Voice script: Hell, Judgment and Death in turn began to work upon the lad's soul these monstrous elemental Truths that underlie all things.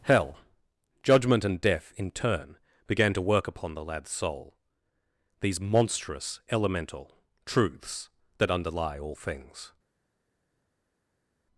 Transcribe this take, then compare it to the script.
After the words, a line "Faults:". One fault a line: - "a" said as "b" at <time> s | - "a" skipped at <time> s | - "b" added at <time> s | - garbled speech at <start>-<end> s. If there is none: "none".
Hell, Judgment and Death in turn began to work upon the lad's soul these monstrous elemental Truths that underlie all things.
Faults:
none